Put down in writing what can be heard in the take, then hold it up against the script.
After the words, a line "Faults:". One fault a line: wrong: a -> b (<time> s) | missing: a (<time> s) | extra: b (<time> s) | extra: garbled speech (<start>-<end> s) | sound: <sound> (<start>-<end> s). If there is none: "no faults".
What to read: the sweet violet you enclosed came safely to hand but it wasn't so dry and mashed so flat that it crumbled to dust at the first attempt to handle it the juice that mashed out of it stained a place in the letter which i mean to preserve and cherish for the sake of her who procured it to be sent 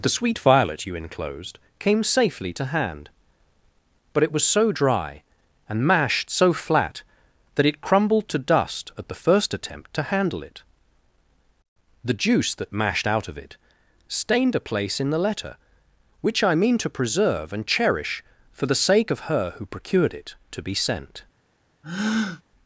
the sweet violet you enclosed came safely to hand but it was so dry and mashed so flat that it crumbled to dust at the first attempt to handle it the juice that mashed out of it stained a place in the letter which i mean to preserve and cherish for the sake of her who procured it to be sent
Faults:
wrong: wasn't -> was (4.3 s)
sound: breath (21.8-22.4 s)